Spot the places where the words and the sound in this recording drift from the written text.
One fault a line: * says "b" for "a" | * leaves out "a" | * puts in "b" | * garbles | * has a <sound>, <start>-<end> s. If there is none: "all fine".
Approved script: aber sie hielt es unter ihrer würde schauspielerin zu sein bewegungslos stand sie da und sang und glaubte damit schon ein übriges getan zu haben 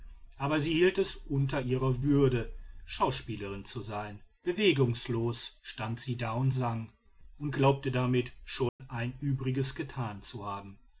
* has a dropout, 8.7-8.8 s